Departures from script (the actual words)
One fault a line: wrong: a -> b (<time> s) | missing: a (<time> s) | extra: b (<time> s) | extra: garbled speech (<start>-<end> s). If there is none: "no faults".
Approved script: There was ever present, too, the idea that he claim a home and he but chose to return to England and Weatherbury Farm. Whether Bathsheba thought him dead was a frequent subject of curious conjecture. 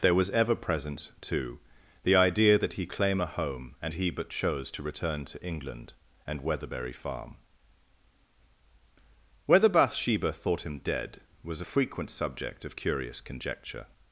no faults